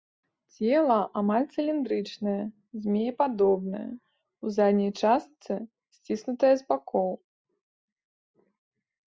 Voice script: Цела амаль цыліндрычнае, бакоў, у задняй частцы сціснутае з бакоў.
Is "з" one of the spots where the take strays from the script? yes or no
no